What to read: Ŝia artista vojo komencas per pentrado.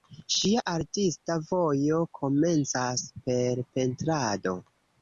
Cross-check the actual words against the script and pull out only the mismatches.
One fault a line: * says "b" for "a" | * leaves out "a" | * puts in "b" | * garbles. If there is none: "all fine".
all fine